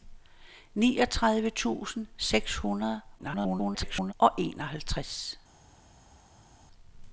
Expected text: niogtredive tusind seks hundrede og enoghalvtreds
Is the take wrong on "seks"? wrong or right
right